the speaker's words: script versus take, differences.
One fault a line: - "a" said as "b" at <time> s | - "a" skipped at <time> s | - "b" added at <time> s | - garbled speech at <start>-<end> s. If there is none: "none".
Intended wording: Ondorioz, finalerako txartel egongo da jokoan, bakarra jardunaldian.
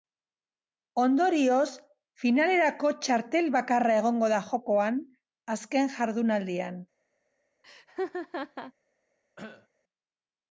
- "bakarra" added at 3.6 s
- "bakarra" said as "azken" at 5.6 s